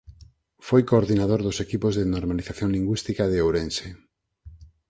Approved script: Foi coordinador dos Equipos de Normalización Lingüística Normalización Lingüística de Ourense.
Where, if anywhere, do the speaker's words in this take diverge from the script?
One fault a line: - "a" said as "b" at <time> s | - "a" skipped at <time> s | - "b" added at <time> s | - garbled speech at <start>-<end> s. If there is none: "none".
- "Normalización Lingüística" skipped at 3.2 s